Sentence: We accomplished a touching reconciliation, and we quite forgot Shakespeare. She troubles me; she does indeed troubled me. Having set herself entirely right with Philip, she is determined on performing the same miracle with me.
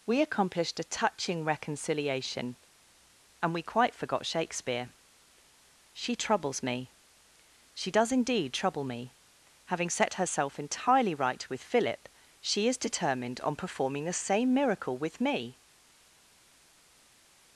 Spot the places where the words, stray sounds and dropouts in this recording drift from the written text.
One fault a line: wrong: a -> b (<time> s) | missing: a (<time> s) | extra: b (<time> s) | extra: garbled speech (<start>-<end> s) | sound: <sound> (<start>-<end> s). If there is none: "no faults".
wrong: troubled -> trouble (8.5 s)